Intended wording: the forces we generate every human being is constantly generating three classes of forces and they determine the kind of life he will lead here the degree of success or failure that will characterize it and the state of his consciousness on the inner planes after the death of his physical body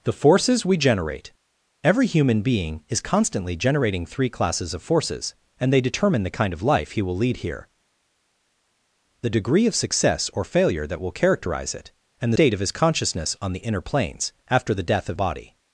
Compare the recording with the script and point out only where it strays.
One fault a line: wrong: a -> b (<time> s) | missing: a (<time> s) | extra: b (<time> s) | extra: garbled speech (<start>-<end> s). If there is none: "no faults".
missing: the (12.3 s)
missing: his physical (15.2 s)